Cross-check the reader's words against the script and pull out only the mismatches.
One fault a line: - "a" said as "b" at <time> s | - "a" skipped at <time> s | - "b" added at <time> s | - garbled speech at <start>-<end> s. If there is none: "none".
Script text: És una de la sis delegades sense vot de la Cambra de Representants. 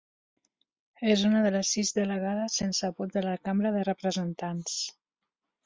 - "la" said as "les" at 1.6 s